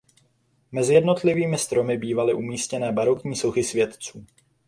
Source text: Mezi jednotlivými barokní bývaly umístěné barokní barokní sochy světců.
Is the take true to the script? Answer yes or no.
no